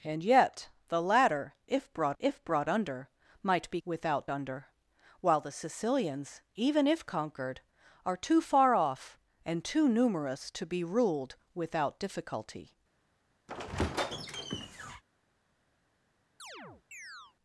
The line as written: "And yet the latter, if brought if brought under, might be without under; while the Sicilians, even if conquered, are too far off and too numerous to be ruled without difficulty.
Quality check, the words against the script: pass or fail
pass